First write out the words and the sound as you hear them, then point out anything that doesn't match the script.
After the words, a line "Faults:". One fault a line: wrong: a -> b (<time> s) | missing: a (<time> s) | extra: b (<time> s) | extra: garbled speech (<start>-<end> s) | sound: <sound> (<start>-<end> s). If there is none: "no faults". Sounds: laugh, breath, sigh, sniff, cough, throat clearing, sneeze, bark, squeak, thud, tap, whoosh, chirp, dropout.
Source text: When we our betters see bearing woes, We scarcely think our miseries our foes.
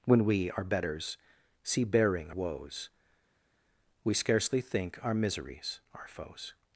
When we our betters see bearing woes, We scarcely think our miseries our foes.
Faults:
no faults